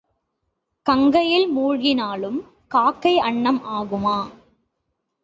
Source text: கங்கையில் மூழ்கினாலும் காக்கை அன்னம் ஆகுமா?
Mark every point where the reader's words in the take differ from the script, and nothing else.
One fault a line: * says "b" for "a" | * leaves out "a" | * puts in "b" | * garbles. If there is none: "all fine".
all fine